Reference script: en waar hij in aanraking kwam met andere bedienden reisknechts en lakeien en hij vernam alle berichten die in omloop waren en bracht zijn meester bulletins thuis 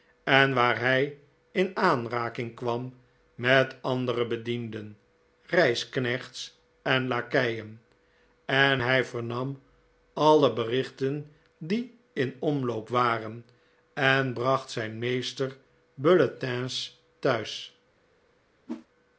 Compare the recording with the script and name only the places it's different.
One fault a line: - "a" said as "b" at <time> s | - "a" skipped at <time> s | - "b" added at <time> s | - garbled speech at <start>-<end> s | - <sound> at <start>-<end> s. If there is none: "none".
- whoosh at 18.7-18.9 s